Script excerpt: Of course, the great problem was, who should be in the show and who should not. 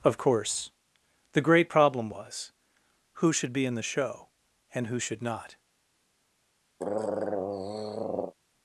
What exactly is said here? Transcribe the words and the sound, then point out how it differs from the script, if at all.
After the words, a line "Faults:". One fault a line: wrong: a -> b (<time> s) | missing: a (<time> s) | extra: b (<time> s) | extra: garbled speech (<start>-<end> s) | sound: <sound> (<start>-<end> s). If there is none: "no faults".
Of course, the great problem was, who should be in the show and who should not.
Faults:
sound: throat clearing (6.8-8.3 s)